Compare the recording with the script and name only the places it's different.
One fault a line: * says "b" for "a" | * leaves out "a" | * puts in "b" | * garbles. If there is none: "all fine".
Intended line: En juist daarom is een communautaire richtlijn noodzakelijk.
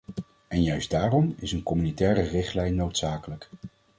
all fine